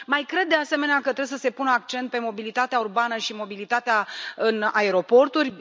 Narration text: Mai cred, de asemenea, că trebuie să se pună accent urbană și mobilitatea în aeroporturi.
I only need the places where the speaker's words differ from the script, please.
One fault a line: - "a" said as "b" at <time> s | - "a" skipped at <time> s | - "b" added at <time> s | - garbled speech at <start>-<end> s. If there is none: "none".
- "pe mobilitatea" added at 2.1 s